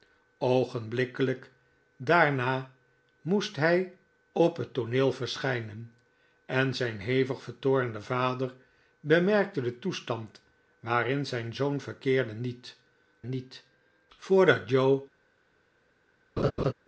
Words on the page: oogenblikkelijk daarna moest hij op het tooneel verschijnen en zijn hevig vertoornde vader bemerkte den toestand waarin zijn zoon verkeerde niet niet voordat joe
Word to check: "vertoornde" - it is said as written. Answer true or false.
true